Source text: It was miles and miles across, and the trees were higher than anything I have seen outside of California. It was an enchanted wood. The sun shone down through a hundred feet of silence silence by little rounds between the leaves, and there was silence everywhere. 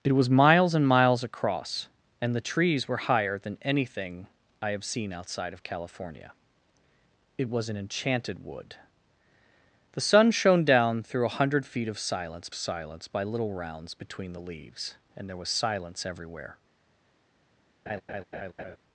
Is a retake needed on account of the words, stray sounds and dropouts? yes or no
yes